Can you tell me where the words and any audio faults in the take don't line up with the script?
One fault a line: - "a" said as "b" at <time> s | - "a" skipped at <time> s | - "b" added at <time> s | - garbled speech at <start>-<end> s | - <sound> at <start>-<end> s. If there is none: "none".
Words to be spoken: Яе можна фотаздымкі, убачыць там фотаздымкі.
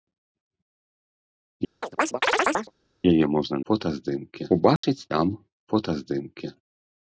- chirp at 1.8-2.7 s
- dropout at 4.8-4.8 s